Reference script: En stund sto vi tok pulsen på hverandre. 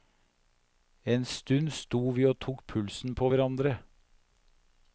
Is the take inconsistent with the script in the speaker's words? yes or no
yes